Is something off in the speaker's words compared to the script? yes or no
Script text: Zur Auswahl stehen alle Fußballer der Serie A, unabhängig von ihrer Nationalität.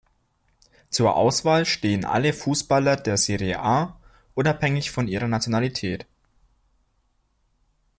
no